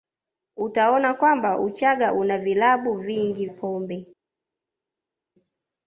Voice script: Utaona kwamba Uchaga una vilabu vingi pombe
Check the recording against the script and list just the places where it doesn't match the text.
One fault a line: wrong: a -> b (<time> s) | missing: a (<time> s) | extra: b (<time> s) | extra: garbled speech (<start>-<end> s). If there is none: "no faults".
no faults